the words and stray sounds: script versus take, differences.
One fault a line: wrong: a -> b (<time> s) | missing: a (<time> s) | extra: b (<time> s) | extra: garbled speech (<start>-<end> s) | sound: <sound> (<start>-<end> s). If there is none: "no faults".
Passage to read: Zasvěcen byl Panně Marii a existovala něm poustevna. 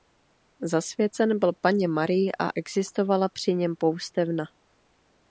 extra: při (3.3 s)